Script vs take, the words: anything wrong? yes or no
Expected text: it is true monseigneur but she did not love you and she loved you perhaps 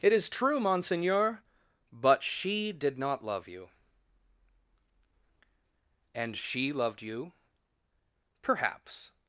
no